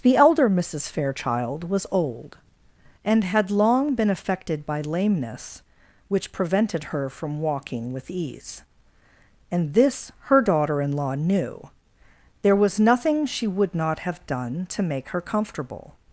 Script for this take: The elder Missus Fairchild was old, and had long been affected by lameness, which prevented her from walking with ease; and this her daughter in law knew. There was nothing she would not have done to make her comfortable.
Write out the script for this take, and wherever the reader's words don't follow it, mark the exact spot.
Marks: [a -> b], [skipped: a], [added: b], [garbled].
The elder Missus Fairchild was old, and had long been affected by lameness, which prevented her from walking with ease; and this her daughter in law knew. There was nothing she would not have done to make her comfortable.